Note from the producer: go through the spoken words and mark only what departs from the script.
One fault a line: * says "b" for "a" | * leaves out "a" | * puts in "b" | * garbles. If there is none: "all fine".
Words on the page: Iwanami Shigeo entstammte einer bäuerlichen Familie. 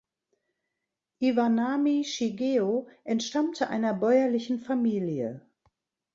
all fine